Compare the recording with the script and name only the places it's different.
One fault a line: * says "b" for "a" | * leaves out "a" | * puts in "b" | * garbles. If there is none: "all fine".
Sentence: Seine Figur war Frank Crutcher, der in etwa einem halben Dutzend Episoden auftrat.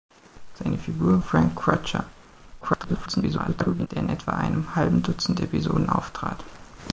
* leaves out "war"
* garbles